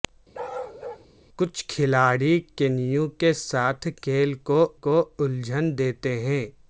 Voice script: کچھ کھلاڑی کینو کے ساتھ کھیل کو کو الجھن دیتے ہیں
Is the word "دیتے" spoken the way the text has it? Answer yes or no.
yes